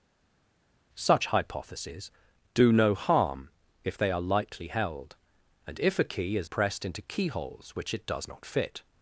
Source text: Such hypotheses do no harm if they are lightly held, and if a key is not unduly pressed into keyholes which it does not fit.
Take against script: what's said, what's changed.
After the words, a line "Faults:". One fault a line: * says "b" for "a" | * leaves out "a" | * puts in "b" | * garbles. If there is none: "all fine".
Such hypotheses do no harm if they are lightly held, and if a key is pressed into keyholes which it does not fit.
Faults:
* leaves out "not unduly"